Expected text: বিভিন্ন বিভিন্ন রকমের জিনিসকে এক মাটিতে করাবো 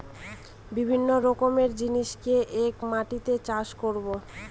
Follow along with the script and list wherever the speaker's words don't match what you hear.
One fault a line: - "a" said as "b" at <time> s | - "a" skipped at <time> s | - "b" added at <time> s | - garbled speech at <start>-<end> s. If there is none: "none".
- "বিভিন্ন" skipped at 1.1 s
- "চাষ" added at 3.5 s